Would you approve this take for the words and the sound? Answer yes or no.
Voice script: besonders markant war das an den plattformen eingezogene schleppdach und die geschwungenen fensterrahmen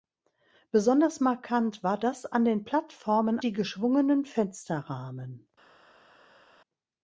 no